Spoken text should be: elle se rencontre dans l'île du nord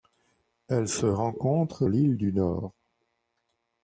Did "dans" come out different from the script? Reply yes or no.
yes